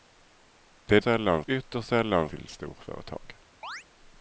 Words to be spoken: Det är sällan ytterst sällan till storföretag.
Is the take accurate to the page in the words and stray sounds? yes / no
no